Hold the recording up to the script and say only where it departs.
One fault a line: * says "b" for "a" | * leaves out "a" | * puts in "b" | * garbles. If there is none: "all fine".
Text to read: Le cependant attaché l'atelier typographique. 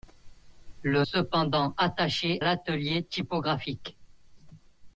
all fine